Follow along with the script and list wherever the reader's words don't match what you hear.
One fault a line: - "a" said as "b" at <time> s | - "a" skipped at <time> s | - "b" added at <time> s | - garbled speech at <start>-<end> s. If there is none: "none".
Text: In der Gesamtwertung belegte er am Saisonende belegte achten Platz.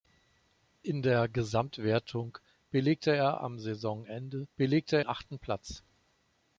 none